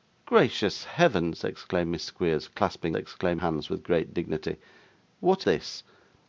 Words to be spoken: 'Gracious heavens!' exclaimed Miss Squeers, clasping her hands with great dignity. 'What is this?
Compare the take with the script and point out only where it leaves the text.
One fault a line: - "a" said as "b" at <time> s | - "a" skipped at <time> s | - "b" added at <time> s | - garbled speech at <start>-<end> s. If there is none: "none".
- "her" said as "exclaimed" at 2.9 s
- "is" skipped at 5.4 s